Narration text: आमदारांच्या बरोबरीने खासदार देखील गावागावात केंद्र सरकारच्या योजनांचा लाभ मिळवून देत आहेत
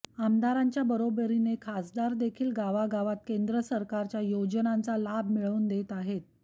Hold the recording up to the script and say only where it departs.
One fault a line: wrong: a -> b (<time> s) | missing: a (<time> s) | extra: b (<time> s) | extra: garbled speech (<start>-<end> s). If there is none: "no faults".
no faults